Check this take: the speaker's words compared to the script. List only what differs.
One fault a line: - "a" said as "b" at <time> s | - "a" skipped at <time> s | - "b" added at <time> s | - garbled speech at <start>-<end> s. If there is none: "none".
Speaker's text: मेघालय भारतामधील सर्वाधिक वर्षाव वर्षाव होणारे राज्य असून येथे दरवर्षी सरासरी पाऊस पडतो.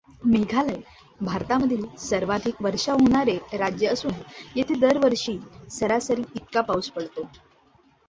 - "वर्षाव" skipped at 3.0 s
- "इतका" added at 6.4 s